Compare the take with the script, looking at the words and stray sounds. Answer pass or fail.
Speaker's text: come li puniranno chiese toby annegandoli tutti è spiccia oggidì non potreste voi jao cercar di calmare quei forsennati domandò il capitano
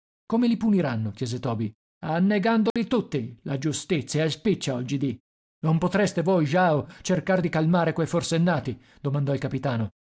fail